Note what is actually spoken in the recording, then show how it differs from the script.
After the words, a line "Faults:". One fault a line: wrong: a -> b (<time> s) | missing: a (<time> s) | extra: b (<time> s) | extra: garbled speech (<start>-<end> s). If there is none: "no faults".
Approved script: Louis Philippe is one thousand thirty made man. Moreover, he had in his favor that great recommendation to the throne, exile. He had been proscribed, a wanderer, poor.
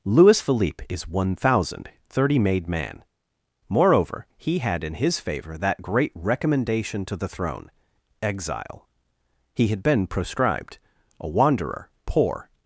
Louis Philippe is one thousand thirty made man. Moreover, he had in his favor that great recommendation to the throne, exile. He had been proscribed, a wanderer, poor.
Faults:
no faults